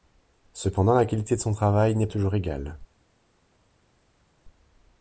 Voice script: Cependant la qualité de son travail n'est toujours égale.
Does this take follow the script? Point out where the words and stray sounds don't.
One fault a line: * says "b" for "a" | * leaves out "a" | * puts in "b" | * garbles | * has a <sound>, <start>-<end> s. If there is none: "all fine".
all fine